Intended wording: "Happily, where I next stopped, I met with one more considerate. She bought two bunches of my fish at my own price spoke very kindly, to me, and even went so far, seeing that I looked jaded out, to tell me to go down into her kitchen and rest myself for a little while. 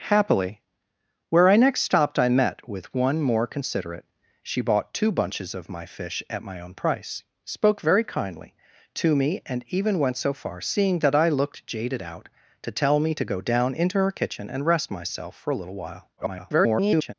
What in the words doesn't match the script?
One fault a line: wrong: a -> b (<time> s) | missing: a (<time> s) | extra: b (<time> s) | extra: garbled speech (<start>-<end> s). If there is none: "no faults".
extra: garbled speech (16.2-17.1 s)